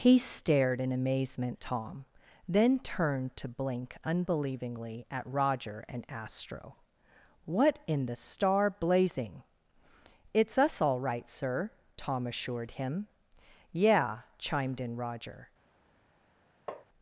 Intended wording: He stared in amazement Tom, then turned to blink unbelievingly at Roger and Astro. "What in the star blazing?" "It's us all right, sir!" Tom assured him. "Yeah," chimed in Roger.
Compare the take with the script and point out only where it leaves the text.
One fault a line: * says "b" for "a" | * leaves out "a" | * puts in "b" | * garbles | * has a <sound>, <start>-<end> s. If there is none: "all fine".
* has a tap, 16.7-16.9 s